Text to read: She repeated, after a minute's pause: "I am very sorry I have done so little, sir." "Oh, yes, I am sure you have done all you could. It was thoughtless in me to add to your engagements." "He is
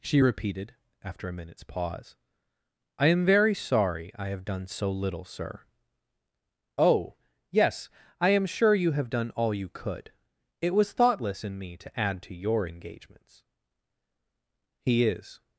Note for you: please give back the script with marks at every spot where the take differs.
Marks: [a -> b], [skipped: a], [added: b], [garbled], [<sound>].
She repeated, after a minute's pause: "I am very sorry I have done so little, sir." "Oh, yes, I am sure you have done all you could. It was thoughtless in me to add to your engagements." "He is